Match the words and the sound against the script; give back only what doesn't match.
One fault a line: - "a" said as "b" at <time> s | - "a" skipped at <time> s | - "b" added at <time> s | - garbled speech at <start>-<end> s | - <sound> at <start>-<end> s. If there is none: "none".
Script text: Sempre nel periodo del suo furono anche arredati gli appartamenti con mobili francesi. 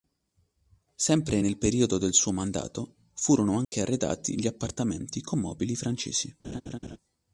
- "mandato" added at 2.3 s
- dropout at 3.6-3.7 s
- laugh at 6.4-7.0 s